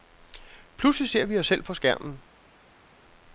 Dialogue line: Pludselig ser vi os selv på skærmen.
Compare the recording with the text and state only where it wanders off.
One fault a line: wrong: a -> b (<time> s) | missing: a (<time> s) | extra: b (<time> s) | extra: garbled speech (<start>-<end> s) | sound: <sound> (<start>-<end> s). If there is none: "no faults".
no faults